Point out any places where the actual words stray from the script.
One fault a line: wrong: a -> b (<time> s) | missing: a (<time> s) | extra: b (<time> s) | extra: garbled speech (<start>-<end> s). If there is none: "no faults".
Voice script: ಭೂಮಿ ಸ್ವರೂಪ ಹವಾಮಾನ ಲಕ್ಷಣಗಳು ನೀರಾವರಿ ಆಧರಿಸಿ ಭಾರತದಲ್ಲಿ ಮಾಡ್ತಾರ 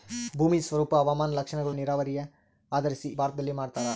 no faults